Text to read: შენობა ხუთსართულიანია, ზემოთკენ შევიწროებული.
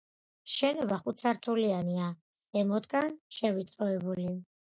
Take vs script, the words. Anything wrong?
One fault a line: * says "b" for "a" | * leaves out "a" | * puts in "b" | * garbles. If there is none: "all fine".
all fine